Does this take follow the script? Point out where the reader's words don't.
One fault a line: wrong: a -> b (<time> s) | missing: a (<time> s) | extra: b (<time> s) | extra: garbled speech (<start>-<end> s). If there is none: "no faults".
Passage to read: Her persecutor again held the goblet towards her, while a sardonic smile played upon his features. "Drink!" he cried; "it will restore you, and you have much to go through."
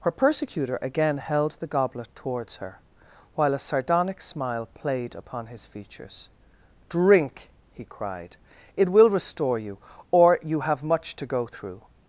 wrong: and -> or (10.1 s)